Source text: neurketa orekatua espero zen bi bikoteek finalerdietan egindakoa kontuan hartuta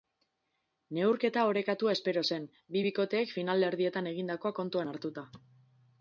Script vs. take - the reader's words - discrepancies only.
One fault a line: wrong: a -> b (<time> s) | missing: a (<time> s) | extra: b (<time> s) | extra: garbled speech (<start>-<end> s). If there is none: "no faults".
no faults